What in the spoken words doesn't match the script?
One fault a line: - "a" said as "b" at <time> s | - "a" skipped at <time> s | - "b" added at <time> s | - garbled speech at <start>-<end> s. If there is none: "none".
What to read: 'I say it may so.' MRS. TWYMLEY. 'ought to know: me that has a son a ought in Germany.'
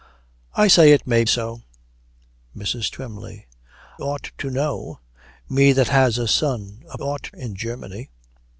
none